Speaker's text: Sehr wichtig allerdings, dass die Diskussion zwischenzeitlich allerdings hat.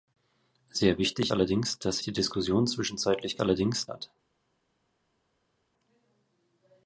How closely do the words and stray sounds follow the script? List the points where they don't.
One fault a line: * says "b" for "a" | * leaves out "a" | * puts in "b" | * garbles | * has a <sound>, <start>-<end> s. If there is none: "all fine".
all fine